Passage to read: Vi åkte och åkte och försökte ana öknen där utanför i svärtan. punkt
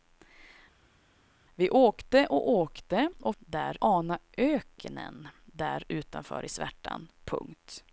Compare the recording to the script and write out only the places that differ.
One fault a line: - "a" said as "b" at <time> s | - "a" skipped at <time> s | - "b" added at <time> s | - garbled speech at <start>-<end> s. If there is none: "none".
- "försökte" said as "där" at 3.4 s